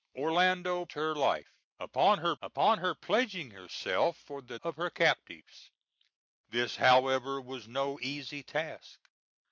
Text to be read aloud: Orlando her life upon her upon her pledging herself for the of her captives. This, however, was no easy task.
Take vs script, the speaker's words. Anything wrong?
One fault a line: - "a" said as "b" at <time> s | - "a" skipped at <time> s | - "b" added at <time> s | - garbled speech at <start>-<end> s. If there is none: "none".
none